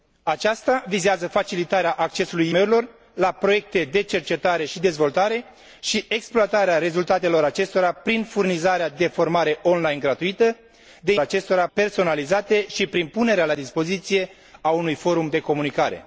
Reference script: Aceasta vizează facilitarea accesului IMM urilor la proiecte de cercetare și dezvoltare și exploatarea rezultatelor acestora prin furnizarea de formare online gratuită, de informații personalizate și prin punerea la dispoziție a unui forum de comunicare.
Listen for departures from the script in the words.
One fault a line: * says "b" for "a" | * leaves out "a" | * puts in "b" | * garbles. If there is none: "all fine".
* leaves out "IMM"
* says "acestora" for "informații"